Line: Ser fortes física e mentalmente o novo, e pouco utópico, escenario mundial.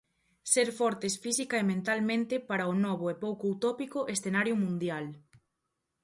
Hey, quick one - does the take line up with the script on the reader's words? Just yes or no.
no